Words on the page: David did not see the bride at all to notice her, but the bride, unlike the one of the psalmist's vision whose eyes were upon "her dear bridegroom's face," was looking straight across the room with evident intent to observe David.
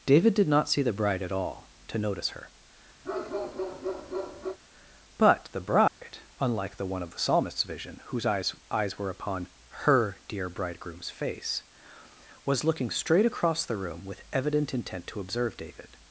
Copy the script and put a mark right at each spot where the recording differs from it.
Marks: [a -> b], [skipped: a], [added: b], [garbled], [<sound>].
David did not see the bride at all to notice her, [bark] but the bride, [dropout] unlike the one of the psalmist's vision whose eyes [added: eyes] were upon "her dear bridegroom's face," was looking straight across the room with evident intent to observe David.